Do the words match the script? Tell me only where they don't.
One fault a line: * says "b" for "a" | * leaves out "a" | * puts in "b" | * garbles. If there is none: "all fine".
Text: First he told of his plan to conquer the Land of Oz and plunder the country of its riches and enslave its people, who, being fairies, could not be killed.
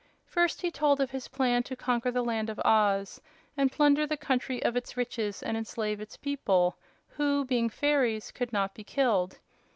all fine